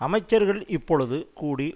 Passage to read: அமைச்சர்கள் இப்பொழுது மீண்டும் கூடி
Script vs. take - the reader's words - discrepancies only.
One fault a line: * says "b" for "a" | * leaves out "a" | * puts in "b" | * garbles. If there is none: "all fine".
* leaves out "மீண்டும்"